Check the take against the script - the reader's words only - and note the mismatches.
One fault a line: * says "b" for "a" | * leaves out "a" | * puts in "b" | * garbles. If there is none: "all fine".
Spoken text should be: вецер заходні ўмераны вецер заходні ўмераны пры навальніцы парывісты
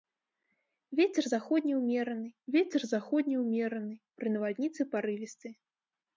all fine